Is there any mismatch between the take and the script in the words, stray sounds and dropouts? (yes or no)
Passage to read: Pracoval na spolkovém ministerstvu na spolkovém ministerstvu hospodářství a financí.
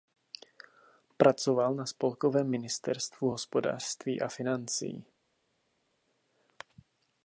yes